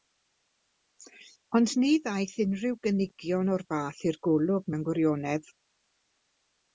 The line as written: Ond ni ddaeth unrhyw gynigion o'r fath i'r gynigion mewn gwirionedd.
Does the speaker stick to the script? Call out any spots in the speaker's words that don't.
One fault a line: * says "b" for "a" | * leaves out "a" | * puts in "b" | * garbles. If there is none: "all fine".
* says "golwg" for "gynigion"